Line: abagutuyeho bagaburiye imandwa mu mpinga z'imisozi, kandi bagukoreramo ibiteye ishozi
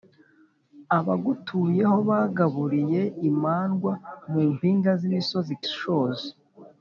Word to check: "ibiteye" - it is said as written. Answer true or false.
false